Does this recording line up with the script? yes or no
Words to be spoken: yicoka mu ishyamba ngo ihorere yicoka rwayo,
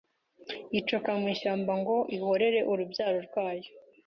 no